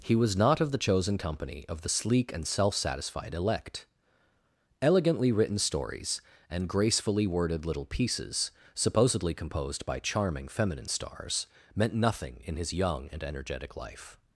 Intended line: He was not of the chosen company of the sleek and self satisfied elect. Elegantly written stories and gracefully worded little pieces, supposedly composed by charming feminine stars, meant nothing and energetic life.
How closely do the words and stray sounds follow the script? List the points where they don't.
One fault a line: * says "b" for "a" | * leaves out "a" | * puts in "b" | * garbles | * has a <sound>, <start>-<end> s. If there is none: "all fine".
* puts in "in his young"